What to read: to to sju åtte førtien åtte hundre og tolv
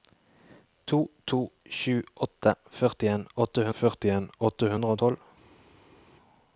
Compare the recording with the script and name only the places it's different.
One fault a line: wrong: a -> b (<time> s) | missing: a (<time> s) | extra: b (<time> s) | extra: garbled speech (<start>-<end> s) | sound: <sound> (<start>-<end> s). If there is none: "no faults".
extra: førtien åtte (3.8 s)